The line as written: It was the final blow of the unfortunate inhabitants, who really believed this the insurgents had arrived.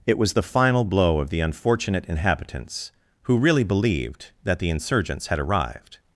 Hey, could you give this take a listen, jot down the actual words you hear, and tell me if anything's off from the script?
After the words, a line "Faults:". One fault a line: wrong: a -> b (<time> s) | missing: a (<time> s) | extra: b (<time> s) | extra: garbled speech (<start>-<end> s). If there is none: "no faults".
It was the final blow of the unfortunate inhabitants, who really believed that the insurgents had arrived.
Faults:
wrong: this -> that (4.4 s)